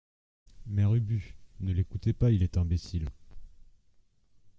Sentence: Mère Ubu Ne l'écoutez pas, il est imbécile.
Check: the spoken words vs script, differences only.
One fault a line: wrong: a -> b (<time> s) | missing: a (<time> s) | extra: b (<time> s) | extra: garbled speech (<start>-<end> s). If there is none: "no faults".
no faults